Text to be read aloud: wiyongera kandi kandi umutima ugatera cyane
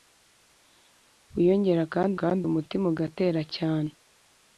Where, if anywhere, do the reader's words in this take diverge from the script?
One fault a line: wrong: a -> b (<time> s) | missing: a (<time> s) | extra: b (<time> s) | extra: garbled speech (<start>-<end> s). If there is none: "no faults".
no faults